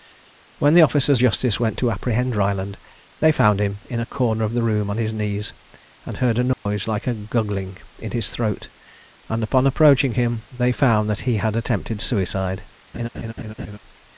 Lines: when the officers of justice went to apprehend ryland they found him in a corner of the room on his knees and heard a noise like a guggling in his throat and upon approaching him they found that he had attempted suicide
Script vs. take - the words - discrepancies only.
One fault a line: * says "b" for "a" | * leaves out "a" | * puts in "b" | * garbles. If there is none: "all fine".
* leaves out "of"